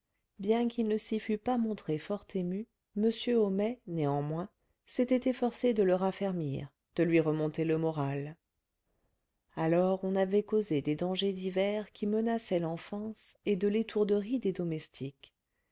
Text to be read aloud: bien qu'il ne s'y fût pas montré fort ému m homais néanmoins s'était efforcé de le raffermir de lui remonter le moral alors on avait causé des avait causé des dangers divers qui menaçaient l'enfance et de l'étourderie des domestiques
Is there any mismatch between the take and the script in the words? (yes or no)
yes